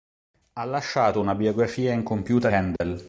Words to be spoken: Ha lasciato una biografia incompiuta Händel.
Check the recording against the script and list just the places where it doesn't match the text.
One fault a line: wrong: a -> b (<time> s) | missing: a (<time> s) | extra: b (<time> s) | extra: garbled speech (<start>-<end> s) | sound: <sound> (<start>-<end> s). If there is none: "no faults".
sound: dropout (2.8-2.8 s)